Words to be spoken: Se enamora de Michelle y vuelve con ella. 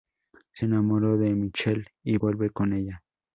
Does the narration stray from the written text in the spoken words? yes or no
no